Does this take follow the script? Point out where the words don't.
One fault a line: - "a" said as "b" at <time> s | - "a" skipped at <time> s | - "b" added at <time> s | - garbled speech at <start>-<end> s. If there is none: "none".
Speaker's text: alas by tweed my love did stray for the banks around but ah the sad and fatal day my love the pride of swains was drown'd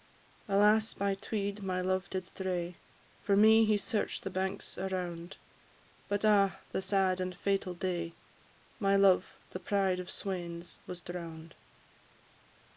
- "me he search'd" added at 3.3 s